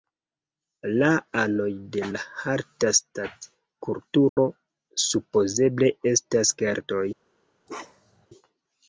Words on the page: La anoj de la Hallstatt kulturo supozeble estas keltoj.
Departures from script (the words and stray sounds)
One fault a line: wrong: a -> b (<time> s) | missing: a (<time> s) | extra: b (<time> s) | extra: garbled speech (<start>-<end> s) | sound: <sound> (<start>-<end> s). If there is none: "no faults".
sound: dropout (4.3-4.4 s)
sound: bark (7.7-8.3 s)